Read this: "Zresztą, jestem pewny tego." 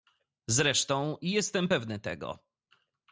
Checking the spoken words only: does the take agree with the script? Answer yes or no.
yes